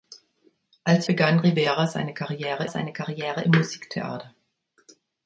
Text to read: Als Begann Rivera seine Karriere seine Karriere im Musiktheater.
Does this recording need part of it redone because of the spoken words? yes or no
no